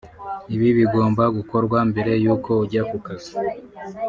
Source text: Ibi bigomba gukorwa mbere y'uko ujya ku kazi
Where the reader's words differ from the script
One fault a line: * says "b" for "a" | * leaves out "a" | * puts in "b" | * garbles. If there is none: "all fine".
all fine